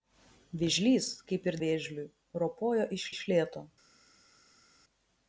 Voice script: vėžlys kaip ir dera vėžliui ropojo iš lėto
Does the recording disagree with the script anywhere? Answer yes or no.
yes